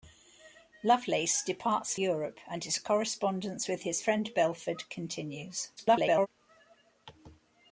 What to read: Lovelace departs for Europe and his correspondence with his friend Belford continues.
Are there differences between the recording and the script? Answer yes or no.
yes